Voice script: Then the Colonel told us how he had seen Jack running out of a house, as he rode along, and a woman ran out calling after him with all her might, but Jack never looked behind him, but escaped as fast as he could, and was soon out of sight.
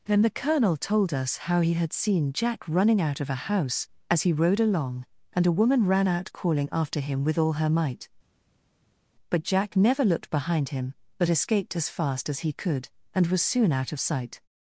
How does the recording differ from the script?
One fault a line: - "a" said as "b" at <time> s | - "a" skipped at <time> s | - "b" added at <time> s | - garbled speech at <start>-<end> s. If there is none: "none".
none